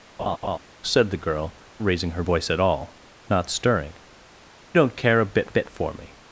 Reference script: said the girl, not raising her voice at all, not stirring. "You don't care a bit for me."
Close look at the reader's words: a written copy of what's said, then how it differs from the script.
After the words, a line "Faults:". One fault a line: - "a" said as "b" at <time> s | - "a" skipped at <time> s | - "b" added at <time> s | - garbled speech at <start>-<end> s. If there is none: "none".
said the girl, raising her voice at all, not stirring. "Don't care a bit bit for me."
Faults:
- "not" skipped at 1.5 s
- "You" skipped at 3.9 s
- "bit" added at 5.5 s